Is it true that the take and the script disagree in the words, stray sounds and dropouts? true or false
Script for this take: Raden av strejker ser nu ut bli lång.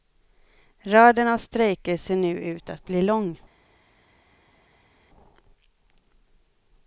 true